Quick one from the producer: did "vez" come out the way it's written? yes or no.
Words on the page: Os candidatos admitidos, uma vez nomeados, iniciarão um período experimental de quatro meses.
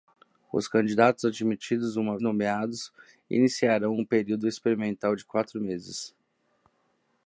no